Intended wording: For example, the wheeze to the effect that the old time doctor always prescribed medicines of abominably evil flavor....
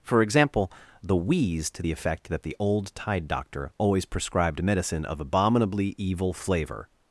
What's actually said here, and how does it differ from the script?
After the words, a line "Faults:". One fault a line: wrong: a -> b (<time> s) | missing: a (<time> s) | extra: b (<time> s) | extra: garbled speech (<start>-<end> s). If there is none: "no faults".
For example, the wheeze to the effect that the old tide doctor always prescribed medicine of abominably evil flavor....
Faults:
wrong: time -> tide (2.9 s)
wrong: medicines -> medicine (4.6 s)